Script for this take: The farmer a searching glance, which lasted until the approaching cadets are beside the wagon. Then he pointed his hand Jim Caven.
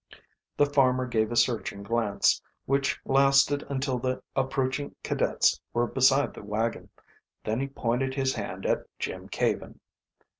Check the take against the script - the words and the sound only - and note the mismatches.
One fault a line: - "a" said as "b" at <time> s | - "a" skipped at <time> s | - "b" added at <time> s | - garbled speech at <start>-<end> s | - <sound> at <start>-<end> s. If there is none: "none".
- "gave" added at 1.1 s
- "are" said as "were" at 5.7 s
- "at" added at 8.7 s